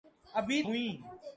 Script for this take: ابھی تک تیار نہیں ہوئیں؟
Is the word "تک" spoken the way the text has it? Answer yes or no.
no